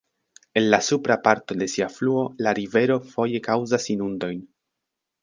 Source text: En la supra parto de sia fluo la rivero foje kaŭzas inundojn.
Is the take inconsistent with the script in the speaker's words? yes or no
no